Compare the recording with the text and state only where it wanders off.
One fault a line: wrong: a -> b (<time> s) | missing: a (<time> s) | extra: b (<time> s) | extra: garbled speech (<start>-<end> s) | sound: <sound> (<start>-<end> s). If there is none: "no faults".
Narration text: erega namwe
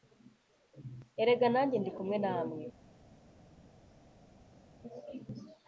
extra: nanjye ndi kumwe (1.5 s)